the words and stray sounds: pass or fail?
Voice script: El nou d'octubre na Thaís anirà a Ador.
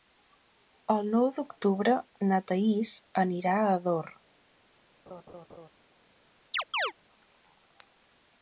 fail